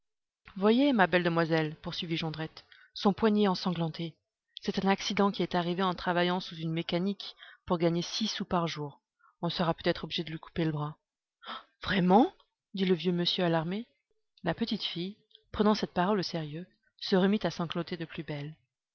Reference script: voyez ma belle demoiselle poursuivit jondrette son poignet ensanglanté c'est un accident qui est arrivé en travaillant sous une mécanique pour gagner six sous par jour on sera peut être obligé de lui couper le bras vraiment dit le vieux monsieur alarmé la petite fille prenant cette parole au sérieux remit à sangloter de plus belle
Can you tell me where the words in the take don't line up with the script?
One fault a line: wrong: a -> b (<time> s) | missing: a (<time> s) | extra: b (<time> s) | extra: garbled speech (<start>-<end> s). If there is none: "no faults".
extra: se (17.0 s)